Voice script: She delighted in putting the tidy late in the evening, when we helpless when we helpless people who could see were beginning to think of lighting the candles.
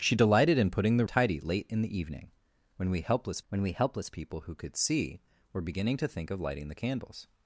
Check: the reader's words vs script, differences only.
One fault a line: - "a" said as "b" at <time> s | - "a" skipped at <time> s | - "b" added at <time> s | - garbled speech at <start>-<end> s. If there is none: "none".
none